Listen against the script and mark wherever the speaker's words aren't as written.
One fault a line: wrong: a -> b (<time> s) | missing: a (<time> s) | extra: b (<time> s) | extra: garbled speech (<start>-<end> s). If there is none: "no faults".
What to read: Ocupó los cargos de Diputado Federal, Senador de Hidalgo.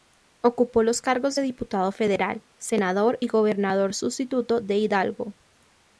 extra: y Gobernador Sustituto (3.2 s)